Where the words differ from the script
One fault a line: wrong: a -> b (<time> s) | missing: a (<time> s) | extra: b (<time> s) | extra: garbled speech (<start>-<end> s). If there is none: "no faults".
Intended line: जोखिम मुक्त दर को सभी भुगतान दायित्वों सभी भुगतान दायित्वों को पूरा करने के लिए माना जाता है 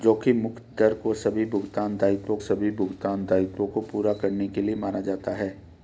no faults